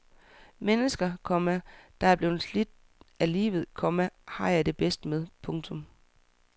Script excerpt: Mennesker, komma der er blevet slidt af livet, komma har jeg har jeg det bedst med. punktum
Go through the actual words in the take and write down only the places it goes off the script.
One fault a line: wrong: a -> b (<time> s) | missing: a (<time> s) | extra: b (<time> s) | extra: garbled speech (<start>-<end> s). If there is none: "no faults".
missing: har jeg (4.7 s)